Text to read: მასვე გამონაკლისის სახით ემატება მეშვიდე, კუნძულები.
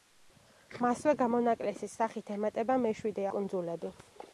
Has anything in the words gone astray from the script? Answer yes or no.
no